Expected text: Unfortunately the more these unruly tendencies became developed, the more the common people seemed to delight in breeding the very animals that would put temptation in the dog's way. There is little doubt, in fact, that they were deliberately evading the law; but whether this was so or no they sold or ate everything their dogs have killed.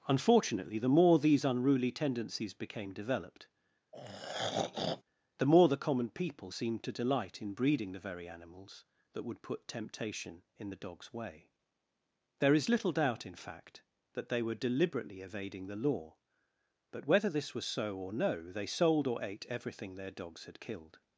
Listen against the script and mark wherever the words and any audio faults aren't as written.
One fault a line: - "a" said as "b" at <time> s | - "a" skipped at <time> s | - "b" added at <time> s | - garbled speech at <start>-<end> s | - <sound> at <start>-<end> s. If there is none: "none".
- throat clearing at 3.9-5.0 s
- "have" said as "had" at 20.4 s